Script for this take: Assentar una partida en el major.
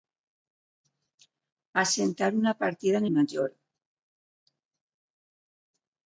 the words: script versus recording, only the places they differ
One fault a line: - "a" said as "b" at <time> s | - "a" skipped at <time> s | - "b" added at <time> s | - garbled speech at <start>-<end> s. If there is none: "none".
- "el" skipped at 3.0 s